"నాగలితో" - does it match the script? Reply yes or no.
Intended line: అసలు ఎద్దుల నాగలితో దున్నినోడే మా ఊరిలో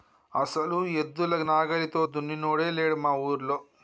yes